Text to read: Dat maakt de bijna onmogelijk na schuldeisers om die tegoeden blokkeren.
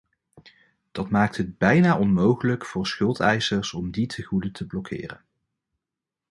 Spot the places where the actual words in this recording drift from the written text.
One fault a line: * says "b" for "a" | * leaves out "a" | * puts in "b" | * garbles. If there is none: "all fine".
* says "het" for "de"
* says "voor" for "na"
* puts in "te"